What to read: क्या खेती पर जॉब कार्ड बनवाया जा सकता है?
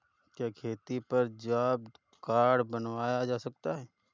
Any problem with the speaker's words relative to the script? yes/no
no